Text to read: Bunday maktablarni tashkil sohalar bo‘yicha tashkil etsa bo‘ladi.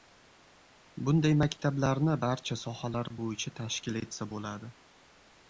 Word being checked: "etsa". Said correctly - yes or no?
yes